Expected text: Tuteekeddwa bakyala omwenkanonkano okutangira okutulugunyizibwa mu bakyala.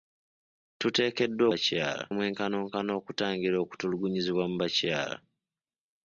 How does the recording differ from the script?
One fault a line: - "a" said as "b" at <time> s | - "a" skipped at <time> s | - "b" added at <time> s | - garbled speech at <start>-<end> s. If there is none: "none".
none